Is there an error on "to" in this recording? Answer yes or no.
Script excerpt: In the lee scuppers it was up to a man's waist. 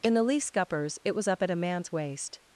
yes